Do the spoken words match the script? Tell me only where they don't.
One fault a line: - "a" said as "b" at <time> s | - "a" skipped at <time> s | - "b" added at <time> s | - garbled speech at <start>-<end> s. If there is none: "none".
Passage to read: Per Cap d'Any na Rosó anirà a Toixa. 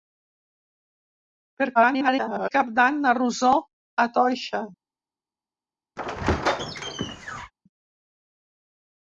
- garbled speech at 1.7-2.5 s
- "anirà" skipped at 3.6 s